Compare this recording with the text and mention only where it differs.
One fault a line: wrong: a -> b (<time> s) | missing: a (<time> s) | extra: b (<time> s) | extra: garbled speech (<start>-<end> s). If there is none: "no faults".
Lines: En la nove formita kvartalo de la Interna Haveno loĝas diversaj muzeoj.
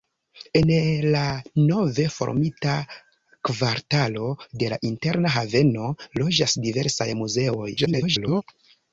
extra: garbled speech (7.8-8.4 s)